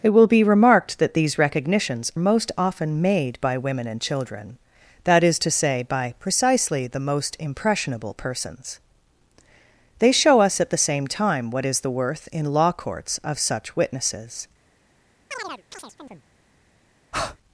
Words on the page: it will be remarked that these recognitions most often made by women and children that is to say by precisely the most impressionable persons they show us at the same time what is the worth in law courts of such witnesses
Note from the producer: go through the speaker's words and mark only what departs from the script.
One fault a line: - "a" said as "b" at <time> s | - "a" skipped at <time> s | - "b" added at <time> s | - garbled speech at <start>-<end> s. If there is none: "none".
none